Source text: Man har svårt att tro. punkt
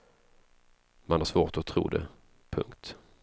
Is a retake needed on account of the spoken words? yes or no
yes